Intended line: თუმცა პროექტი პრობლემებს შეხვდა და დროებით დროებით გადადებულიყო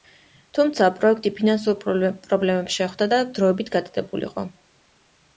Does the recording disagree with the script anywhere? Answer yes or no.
yes